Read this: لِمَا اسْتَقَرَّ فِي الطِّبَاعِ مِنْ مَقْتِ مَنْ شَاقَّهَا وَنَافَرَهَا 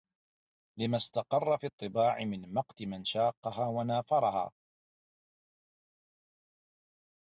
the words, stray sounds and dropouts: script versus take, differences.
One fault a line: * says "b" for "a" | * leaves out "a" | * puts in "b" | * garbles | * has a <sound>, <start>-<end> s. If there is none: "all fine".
all fine